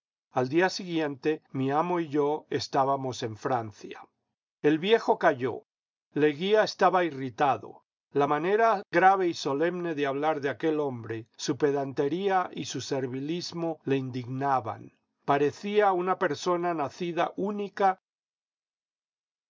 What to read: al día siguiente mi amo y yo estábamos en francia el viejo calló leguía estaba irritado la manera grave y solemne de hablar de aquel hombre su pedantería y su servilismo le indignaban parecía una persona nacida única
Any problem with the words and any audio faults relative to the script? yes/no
no